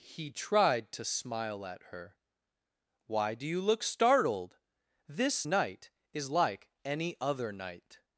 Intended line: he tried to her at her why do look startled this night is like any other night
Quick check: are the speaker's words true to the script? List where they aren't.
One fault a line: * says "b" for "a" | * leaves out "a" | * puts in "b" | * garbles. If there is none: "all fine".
* says "smile" for "her"
* puts in "you"